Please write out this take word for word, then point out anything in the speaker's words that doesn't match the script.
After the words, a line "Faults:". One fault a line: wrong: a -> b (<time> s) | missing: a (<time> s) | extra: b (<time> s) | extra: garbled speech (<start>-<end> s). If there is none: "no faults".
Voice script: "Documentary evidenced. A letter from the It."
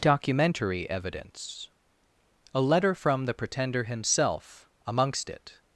"Documentary evidence. A letter from the Pretender himself amongst it."
Faults:
wrong: evidenced -> evidence (0.9 s)
extra: Pretender himself amongst (3.4 s)